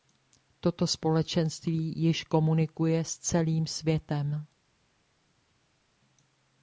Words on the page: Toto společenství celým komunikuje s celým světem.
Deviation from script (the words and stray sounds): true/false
true